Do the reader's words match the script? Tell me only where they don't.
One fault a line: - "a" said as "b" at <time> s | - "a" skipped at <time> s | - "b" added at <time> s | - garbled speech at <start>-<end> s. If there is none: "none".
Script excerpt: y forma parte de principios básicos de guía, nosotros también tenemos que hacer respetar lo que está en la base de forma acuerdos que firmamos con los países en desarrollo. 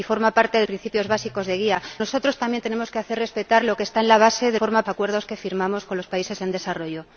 none